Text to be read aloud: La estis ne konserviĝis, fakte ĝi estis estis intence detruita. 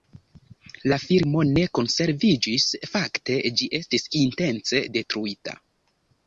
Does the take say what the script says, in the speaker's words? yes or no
no